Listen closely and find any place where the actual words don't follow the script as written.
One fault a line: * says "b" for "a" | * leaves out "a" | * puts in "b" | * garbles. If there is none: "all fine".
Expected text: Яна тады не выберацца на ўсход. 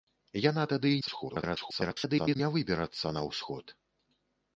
* garbles